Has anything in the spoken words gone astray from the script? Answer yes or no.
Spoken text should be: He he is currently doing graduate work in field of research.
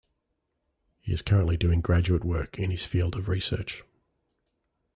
yes